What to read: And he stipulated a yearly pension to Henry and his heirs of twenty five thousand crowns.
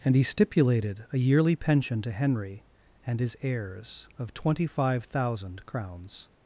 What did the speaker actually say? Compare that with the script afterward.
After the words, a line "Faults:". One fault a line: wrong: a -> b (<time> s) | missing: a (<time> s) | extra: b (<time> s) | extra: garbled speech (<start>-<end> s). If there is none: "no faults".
And he stipulated a yearly pension to Henry and his heirs of twenty five thousand crowns.
Faults:
no faults